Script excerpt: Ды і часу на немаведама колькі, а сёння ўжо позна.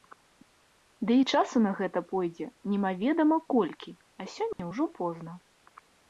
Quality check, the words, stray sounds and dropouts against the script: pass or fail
fail